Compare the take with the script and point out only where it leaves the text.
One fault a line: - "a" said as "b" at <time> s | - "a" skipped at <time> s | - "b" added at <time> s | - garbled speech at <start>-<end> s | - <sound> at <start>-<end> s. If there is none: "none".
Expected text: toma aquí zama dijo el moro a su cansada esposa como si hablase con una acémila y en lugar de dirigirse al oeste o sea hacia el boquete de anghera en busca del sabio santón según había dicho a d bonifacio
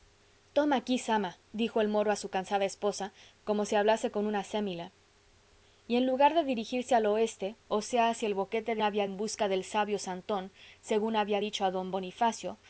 - "anghera" said as "había" at 8.8 s